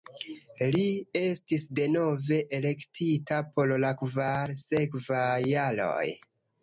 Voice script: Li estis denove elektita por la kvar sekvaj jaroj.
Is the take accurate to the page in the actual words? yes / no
yes